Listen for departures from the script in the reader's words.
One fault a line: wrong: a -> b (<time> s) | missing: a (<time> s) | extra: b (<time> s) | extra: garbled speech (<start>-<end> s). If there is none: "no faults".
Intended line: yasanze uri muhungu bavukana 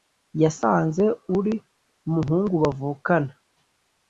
no faults